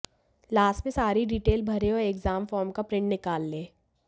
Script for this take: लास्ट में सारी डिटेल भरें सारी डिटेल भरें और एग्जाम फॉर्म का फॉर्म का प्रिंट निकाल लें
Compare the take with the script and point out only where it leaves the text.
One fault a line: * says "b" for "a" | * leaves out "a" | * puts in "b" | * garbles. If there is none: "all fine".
* leaves out "सारी डिटेल भरें"
* leaves out "फॉर्म का"